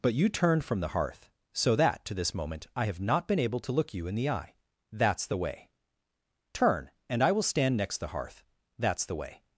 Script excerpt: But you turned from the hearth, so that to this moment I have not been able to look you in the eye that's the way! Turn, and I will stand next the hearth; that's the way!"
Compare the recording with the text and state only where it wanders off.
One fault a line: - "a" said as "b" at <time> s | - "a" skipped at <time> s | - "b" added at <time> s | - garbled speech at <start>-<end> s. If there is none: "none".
none